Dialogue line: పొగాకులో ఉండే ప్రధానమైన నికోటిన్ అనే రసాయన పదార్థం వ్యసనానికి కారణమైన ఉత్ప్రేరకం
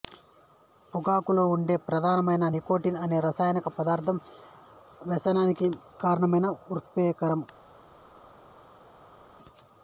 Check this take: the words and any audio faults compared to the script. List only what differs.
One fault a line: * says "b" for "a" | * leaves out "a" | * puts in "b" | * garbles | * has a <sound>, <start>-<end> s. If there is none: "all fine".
all fine